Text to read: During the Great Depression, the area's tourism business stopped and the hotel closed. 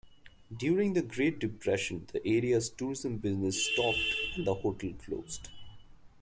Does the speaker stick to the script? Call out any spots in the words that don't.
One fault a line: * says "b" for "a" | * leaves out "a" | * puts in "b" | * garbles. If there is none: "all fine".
all fine